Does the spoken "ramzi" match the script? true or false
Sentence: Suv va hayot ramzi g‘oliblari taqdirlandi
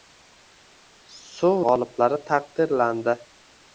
false